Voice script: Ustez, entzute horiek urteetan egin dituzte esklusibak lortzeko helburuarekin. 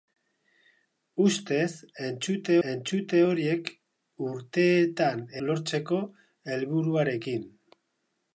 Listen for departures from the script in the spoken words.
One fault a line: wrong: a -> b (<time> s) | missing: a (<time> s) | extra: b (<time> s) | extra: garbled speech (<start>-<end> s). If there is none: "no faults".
extra: entzute (2.7 s)
missing: egin dituzte esklusibak (5.2 s)